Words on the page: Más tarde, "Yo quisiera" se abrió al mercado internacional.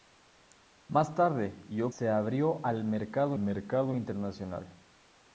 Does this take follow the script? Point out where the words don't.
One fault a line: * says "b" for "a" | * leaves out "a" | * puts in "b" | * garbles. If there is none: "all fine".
* leaves out "quisiera"
* puts in "mercado"